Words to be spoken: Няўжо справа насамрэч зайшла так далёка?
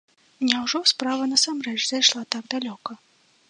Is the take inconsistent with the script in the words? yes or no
no